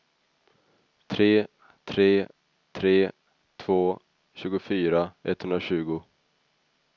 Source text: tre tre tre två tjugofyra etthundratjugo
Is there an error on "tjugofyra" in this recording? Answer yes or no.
no